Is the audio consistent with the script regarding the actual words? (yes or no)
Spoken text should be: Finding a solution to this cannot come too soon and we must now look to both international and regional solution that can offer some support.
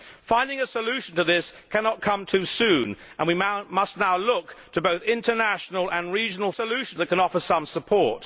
yes